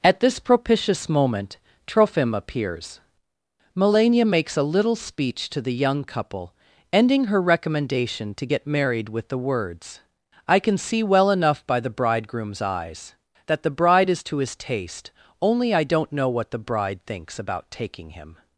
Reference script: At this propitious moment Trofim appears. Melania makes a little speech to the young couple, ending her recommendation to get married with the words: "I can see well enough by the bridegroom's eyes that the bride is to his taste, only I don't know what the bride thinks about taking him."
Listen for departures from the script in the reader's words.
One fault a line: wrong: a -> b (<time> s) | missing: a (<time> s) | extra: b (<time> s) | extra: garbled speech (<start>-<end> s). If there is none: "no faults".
no faults